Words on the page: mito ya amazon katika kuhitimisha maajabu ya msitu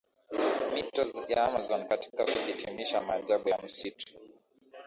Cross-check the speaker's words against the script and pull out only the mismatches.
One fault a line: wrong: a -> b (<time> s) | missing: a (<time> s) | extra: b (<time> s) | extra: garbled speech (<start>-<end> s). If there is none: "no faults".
no faults